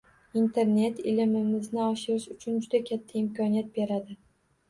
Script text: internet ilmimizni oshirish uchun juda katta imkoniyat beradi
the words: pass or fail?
pass